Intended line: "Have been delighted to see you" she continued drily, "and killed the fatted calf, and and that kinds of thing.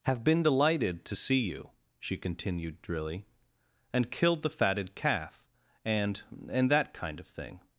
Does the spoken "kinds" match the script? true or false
false